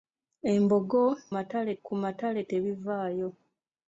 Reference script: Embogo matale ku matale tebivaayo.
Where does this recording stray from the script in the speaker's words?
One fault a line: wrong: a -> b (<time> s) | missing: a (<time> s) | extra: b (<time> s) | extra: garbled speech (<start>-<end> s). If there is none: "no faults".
no faults